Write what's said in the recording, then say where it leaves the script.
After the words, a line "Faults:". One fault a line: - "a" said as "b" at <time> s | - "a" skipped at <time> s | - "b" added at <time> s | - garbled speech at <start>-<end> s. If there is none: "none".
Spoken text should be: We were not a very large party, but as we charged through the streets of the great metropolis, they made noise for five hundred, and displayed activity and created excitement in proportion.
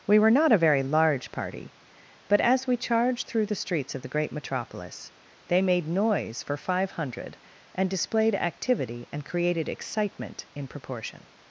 We were not a very large party, but as we charged through the streets of the great metropolis, they made noise for five hundred, and displayed activity and created excitement in proportion.
Faults:
none